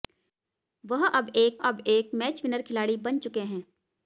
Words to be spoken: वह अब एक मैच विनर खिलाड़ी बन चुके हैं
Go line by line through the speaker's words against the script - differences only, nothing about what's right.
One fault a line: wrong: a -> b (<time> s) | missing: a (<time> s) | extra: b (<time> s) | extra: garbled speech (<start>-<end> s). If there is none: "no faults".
extra: अब एक (1.6 s)